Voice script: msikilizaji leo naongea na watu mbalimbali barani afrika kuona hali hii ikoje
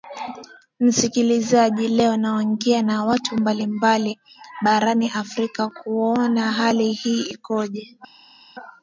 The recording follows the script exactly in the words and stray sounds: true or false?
true